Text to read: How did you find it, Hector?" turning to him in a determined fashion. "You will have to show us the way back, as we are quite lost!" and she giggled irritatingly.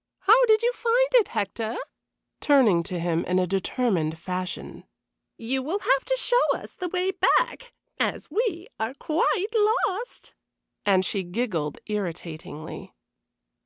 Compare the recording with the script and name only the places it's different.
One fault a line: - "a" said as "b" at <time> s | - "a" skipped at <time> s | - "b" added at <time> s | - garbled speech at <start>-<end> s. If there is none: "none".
none